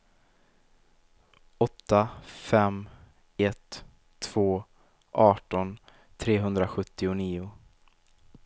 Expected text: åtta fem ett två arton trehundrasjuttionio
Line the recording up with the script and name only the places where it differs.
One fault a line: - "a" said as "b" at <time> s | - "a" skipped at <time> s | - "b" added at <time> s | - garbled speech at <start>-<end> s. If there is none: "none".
none